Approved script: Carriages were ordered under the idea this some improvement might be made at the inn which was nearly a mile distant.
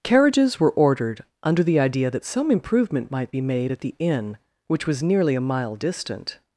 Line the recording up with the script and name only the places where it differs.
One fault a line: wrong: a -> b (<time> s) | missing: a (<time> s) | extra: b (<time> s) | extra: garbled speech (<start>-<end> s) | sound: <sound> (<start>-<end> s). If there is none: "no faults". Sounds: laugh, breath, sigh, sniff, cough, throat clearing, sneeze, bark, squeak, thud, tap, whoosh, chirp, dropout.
wrong: this -> that (2.1 s)